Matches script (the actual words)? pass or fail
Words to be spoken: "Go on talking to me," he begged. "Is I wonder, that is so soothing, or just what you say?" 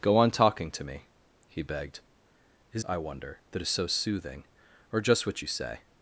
pass